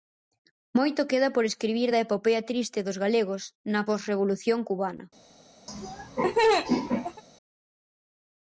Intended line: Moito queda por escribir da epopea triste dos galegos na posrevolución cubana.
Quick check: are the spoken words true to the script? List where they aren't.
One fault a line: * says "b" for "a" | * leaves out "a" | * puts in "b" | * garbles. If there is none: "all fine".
all fine